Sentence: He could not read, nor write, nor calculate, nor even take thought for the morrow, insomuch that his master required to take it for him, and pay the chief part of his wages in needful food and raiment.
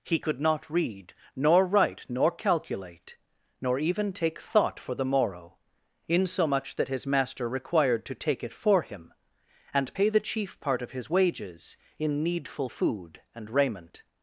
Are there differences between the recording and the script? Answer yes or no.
no